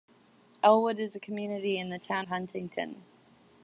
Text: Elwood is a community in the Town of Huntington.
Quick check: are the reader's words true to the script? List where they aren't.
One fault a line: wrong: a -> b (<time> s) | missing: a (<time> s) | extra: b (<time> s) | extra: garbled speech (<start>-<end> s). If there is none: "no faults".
missing: of (2.2 s)